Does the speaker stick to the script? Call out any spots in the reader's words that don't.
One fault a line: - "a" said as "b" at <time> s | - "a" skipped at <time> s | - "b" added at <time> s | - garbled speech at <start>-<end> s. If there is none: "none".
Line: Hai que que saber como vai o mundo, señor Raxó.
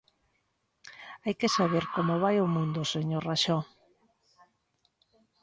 - "que" skipped at 1.5 s